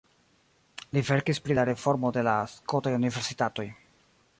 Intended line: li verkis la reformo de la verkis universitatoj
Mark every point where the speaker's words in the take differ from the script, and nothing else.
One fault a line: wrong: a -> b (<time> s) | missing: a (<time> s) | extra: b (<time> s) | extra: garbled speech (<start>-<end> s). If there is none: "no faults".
extra: pri (1.5 s)
wrong: verkis -> skotaj (2.6 s)